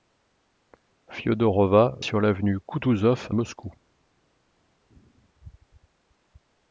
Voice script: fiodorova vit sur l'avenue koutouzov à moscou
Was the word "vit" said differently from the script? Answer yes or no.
yes